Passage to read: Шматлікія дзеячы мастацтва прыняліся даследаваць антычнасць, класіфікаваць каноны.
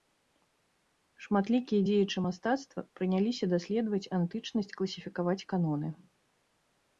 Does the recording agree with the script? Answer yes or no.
yes